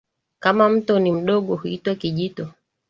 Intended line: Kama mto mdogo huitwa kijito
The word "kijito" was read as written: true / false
true